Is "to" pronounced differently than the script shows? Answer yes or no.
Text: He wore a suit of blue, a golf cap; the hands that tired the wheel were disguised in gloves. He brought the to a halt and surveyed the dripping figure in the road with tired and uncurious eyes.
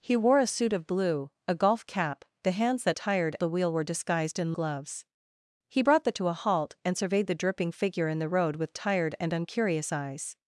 no